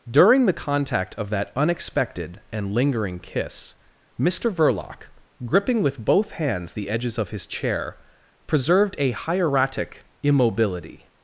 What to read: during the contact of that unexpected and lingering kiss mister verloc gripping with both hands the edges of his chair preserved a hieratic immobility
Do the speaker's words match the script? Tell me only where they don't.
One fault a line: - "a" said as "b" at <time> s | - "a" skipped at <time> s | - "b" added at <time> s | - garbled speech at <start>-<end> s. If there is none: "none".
none